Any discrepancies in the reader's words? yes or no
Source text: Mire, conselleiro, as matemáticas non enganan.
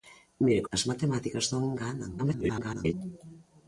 yes